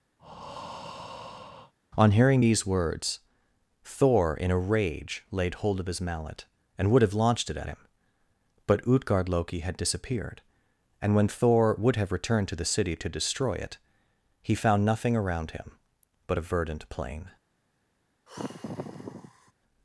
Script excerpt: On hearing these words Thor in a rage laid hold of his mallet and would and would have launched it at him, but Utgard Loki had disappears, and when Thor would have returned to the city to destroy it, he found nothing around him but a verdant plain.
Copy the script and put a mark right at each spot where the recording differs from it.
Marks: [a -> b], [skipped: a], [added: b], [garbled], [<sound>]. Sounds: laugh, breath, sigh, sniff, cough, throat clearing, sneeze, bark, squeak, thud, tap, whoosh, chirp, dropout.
[breath] On hearing these words Thor in a rage laid hold of his mallet and would [skipped: and would] have launched it at him, but Utgard Loki had [disappears, -> disappeared] and when Thor would have returned to the city to destroy it, he found nothing around him but a verdant plain. [sigh]